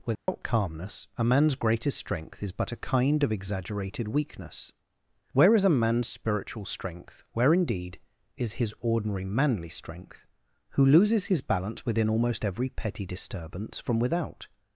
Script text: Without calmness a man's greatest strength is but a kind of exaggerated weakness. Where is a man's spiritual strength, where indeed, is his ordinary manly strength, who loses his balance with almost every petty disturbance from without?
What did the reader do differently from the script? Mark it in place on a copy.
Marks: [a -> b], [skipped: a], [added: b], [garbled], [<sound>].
Without [dropout] calmness a man's greatest strength is but a kind of exaggerated weakness. Where is a man's spiritual strength, where indeed, is his ordinary manly strength, who loses his balance [with -> within] almost every petty disturbance from without?